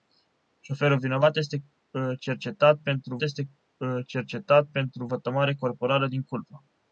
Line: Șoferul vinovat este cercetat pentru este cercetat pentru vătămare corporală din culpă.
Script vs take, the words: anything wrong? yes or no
no